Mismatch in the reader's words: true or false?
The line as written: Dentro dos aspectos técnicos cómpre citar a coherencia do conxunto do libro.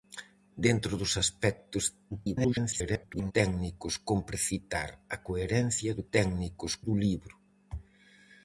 true